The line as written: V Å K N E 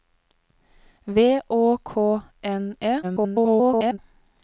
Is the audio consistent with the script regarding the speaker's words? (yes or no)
no